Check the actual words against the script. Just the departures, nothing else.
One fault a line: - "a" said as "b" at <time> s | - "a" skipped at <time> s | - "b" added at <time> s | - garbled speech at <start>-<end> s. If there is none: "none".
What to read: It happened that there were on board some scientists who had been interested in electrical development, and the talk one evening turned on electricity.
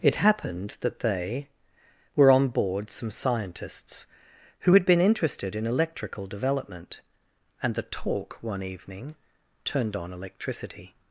- "there" said as "they" at 1.0 s